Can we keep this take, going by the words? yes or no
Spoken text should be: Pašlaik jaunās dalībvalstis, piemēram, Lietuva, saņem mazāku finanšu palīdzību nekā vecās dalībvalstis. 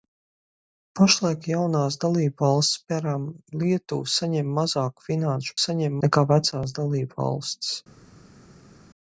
no